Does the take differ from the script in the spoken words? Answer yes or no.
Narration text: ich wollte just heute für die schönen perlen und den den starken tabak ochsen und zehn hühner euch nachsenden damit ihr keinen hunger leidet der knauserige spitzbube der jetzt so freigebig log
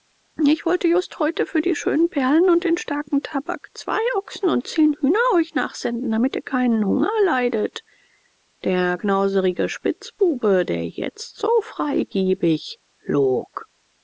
yes